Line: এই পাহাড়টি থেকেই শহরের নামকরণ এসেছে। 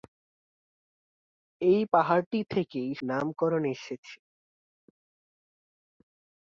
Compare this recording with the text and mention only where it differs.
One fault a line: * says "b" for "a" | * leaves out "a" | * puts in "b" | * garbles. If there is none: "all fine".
* leaves out "শহরের"